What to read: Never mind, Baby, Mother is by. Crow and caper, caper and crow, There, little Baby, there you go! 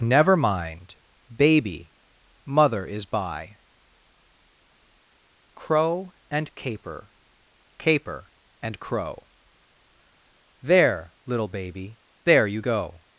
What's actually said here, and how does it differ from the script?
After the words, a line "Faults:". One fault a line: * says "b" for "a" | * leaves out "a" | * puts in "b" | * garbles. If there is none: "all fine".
Never mind, Baby, Mother is by. Crow and caper, caper and crow, There, little Baby, there you go!
Faults:
all fine